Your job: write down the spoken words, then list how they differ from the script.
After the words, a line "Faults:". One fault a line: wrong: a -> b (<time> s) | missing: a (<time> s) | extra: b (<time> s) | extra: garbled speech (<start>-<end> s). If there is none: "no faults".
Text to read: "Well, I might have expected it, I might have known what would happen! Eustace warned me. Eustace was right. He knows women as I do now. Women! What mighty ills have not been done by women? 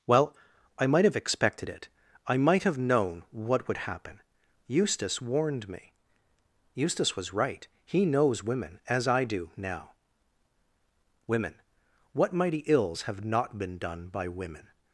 "Well, I might have expected it, I might have known what would happen! Eustace warned me. Eustace was right. He knows women as I do now. Women! What mighty ills have not been done by women?
Faults:
no faults